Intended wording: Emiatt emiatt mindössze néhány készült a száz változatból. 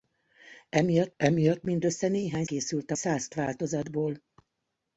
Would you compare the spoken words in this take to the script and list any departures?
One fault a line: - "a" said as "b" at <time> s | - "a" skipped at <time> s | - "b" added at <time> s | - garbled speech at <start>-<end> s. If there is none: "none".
none